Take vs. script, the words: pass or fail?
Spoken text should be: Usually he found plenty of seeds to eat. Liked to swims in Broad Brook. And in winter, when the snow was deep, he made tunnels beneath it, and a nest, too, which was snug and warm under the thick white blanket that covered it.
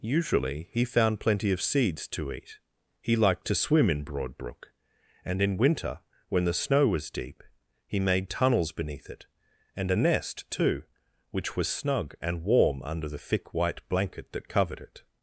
fail